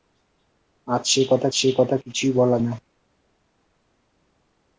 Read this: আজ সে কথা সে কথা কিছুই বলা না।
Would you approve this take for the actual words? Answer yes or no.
yes